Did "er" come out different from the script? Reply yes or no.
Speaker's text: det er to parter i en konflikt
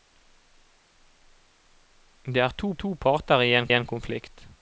no